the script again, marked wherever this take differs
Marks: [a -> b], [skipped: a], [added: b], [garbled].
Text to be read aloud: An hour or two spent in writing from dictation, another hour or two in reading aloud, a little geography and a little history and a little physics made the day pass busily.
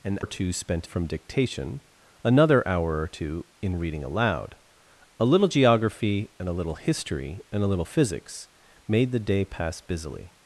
An [skipped: hour] or two spent [skipped: in writing] from dictation, another hour or two in reading aloud, a little geography and a little history and a little physics made the day pass busily.